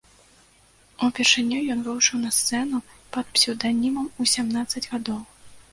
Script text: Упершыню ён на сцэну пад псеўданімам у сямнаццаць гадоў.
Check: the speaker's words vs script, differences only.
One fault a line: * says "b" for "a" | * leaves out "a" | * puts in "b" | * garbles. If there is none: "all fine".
* puts in "выйшаў"